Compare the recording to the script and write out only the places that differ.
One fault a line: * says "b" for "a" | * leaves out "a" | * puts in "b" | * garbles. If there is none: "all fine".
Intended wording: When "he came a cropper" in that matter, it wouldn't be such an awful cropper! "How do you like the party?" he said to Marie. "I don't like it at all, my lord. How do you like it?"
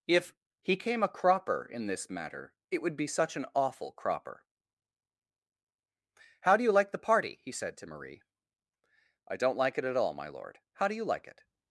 * says "If" for "When"
* says "this" for "that"
* says "would" for "wouldn't"